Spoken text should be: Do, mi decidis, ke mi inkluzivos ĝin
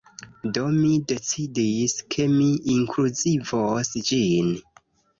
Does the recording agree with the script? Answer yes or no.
yes